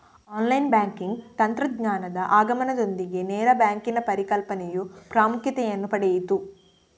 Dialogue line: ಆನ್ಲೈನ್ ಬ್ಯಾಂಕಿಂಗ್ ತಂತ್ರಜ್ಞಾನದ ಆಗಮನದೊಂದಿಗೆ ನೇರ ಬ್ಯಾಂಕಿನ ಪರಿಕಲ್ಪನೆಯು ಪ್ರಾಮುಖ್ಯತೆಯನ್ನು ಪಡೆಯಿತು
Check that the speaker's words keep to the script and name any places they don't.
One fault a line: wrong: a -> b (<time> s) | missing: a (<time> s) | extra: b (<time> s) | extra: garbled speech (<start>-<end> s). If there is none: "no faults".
no faults